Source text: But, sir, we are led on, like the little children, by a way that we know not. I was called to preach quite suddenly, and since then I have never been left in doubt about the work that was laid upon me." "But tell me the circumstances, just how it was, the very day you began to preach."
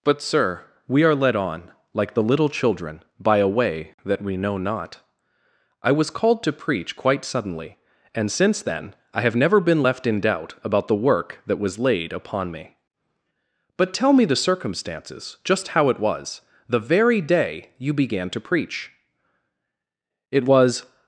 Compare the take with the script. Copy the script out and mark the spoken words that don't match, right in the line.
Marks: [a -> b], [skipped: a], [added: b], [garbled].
But, sir, we are led on, like the little children, by a way that we know not. I was called to preach quite suddenly, and since then I have never been left in doubt about the work that was laid upon me." "But tell me the circumstances, just how it was, the very day you began to preach." [added: It was]